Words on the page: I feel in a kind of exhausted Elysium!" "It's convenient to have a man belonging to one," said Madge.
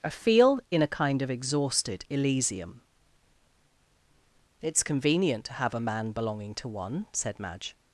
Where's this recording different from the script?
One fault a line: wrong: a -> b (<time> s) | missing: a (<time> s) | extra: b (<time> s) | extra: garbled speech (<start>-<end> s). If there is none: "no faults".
no faults